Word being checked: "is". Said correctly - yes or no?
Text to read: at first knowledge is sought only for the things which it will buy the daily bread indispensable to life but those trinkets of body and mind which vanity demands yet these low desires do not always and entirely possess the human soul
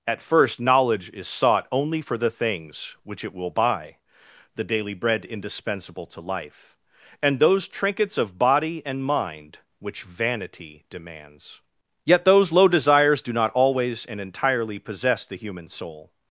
yes